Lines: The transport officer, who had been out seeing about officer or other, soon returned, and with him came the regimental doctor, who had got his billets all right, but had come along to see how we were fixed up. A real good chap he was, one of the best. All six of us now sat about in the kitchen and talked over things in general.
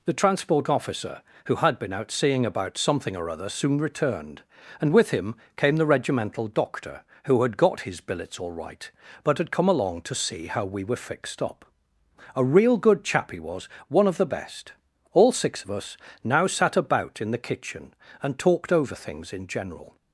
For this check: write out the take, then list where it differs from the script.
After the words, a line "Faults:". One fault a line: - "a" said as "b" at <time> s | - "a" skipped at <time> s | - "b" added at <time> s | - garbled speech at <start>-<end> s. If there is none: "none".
The transport officer, who had been out seeing about something or other, soon returned, and with him came the regimental doctor, who had got his billets all right, but had come along to see how we were fixed up. A real good chap he was, one of the best. All six of us now sat about in the kitchen and talked over things in general.
Faults:
- "officer" said as "something" at 2.8 s